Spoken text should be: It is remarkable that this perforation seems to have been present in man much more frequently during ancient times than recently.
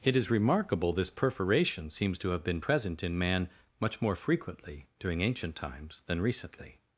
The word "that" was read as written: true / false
false